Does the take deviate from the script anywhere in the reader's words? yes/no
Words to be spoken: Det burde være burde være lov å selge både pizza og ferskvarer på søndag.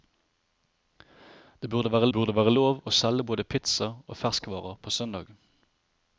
no